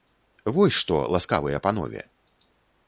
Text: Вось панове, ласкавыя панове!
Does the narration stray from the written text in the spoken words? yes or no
yes